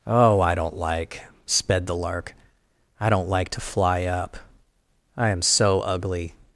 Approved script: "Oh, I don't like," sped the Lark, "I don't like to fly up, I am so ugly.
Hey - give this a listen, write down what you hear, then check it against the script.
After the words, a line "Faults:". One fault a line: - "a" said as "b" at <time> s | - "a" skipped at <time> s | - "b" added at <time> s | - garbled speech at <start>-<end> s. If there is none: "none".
"Oh, I don't like," sped the Lark, "I don't like to fly up, I am so ugly.
Faults:
none